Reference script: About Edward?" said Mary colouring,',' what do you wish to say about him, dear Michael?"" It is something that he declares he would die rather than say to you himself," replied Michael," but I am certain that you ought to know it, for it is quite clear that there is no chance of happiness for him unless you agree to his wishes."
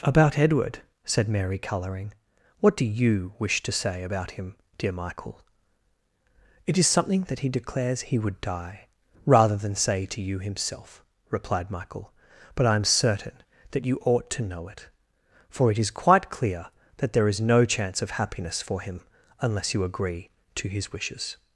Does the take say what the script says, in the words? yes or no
yes